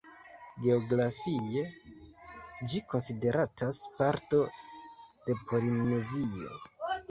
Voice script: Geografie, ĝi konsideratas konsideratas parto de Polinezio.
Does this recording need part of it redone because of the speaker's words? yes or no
yes